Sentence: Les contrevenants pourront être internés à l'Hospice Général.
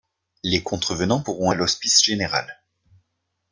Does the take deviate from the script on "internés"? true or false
true